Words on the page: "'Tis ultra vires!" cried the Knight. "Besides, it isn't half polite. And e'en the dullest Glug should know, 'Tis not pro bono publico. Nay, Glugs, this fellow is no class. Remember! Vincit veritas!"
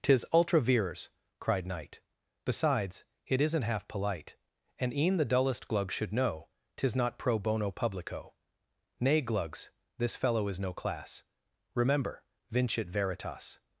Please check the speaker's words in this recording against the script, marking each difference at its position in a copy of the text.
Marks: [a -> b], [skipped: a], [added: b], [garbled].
"'Tis ultra vires!" cried [skipped: the] Knight. "Besides, it isn't half polite. And e'en the dullest Glug should know, 'Tis not pro bono publico. Nay, Glugs, this fellow is no class. Remember! Vincit veritas!"